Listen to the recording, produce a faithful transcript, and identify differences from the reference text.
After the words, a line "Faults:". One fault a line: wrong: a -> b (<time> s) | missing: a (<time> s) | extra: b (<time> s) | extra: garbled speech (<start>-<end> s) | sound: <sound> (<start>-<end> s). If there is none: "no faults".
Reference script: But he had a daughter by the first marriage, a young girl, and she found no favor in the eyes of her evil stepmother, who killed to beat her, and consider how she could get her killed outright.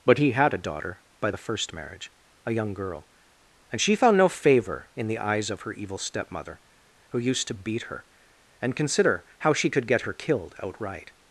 But he had a daughter by the first marriage, a young girl, and she found no favor in the eyes of her evil stepmother, who used to beat her, and consider how she could get her killed outright.
Faults:
wrong: killed -> used (7.2 s)